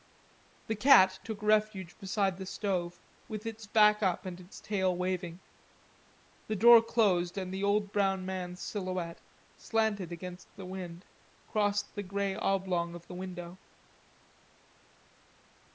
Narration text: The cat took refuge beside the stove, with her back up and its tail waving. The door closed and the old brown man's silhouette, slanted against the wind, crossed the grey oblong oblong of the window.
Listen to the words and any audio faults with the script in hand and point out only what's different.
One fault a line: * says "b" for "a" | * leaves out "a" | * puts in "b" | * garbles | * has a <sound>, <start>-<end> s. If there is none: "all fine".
* says "its" for "her"
* leaves out "oblong"